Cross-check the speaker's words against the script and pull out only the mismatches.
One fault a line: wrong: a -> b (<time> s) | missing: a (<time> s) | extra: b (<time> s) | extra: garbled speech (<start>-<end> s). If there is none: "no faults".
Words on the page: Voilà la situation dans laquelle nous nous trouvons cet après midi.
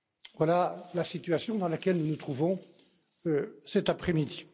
no faults